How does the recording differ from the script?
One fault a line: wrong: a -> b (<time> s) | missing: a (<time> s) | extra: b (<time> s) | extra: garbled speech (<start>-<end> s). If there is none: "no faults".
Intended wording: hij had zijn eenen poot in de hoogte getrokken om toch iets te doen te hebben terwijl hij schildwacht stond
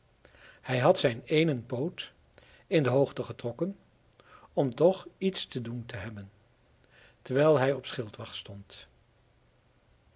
extra: op (7.7 s)